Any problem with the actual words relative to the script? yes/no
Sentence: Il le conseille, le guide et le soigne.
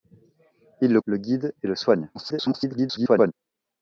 yes